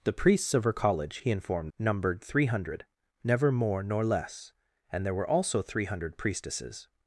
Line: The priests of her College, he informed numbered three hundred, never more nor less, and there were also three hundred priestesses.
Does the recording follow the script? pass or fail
pass